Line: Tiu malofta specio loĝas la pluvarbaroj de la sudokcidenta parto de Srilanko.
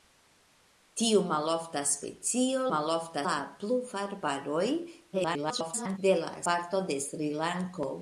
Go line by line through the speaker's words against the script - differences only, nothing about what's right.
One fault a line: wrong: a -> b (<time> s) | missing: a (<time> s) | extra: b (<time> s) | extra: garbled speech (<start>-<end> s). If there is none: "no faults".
wrong: loĝas -> malofta (2.7 s)
extra: garbled speech (5.1-6.0 s)
missing: sudokcidenta (6.3 s)